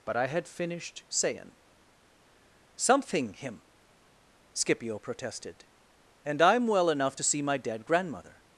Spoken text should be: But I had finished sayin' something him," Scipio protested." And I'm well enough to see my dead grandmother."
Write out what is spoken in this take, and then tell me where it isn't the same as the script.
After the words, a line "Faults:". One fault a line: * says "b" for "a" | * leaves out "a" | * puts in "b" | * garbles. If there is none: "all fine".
But I had finished sayin' something him," Scipio protested." And I'm well enough to see my dead grandmother."
Faults:
all fine